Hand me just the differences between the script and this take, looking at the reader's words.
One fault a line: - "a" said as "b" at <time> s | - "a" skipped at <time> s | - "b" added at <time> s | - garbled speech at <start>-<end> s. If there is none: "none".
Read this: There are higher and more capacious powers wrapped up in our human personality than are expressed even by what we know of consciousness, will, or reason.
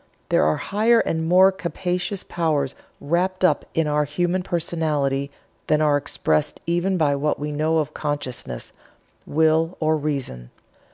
none